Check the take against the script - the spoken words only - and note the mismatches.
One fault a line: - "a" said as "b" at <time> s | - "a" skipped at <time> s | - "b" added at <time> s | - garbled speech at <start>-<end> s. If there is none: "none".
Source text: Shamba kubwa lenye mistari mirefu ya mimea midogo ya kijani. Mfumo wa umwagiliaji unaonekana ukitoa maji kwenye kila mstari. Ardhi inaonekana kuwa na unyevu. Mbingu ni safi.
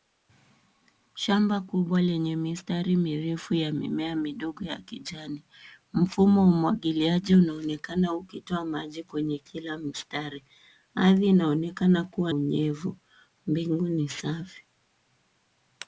- "na" skipped at 12.3 s